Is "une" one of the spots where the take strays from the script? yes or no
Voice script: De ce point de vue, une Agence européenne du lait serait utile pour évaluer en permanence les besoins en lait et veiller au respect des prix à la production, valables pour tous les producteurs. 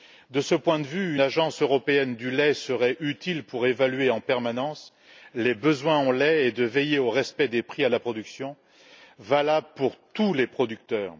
yes